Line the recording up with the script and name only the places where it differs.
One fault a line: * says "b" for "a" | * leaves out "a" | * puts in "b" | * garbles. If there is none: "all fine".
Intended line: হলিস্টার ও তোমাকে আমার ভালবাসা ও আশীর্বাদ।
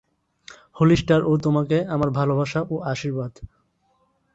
all fine